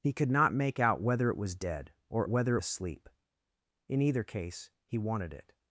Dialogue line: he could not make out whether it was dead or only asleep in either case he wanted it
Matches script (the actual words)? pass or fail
fail